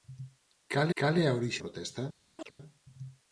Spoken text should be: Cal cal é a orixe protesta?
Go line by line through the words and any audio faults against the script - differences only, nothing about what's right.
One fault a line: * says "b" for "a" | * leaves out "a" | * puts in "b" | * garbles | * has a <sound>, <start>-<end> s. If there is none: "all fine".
* has a chirp, 2.4-2.5 s